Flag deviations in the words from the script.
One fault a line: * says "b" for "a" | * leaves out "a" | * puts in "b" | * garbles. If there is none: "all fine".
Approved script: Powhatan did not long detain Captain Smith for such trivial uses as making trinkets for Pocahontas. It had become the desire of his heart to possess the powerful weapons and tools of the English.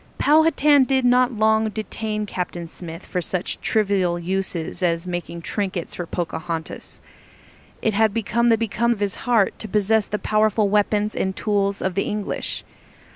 * says "become" for "desire"